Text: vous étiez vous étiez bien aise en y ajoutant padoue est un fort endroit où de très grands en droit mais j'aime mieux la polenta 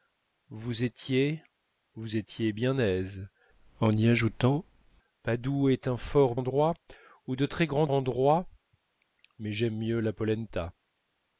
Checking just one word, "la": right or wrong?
right